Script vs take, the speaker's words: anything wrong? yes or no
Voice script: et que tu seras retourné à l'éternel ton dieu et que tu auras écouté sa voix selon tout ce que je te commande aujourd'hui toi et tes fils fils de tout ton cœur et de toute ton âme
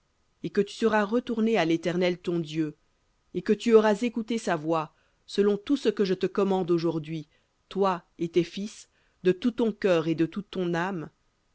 yes